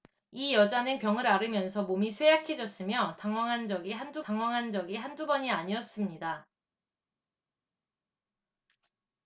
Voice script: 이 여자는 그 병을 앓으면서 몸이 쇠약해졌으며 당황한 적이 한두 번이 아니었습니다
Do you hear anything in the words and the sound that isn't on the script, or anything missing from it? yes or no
yes